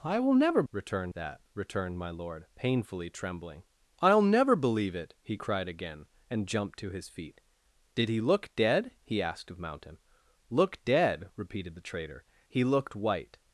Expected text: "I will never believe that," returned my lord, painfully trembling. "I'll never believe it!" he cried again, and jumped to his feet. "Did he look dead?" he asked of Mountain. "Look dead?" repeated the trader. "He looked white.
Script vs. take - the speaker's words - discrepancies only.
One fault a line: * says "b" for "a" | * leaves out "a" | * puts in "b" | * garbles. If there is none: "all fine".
* says "returned" for "believe"